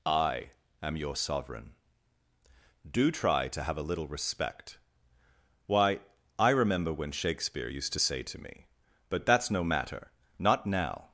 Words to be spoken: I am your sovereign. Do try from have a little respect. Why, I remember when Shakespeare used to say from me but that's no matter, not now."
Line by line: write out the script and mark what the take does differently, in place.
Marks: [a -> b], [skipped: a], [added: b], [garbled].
I am your sovereign. Do try [from -> to] have a little respect. Why, I remember when Shakespeare used to say [from -> to] me but that's no matter, not now."